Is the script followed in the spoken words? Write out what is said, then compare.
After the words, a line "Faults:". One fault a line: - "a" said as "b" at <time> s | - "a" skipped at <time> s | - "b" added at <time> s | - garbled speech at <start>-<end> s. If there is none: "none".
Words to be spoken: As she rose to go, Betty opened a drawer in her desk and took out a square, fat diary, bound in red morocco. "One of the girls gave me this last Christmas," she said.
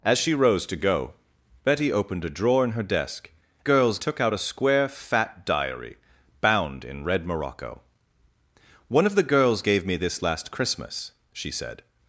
As she rose to go, Betty opened a drawer in her desk girls took out a square, fat diary, bound in red morocco. "One of the girls gave me this last Christmas," she said.
Faults:
- "and" said as "girls" at 3.6 s